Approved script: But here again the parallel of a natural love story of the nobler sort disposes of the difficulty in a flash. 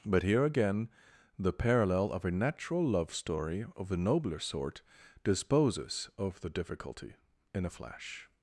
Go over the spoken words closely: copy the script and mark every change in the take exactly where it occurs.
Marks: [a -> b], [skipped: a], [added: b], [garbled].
But here again the parallel of a natural love story of the nobler sort disposes of the difficulty in a flash.